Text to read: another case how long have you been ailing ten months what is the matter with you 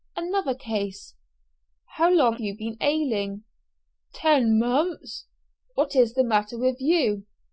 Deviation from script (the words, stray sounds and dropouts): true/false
true